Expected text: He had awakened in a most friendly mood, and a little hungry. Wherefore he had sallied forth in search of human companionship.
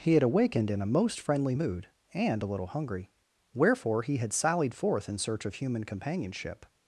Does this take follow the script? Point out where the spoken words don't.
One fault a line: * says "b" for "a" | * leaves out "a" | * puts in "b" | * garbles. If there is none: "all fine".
all fine